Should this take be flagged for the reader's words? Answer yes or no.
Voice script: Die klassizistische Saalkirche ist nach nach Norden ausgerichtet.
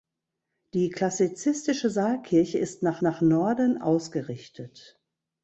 no